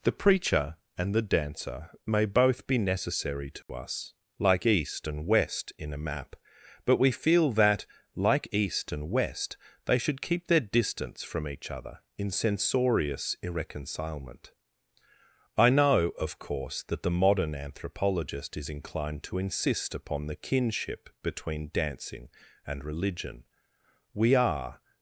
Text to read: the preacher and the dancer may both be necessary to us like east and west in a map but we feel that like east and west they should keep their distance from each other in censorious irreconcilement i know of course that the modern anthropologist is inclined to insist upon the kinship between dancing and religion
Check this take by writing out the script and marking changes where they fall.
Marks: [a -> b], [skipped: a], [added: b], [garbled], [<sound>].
the preacher and the dancer may both be necessary to [dropout] us like east and west in a map but we feel that like east and west they should keep their distance from each other in censorious irreconcilement i know of course that the modern anthropologist is inclined to insist upon the kinship between dancing and religion [added: we are]